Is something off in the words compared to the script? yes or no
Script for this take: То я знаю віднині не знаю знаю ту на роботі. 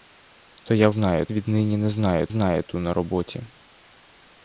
no